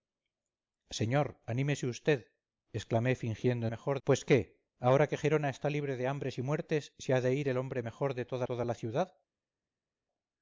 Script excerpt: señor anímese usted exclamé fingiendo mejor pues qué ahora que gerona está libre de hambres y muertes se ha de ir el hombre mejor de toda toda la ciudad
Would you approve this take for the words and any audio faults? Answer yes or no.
yes